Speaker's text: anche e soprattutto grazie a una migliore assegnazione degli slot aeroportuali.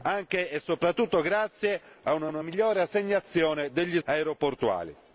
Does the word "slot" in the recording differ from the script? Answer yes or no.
yes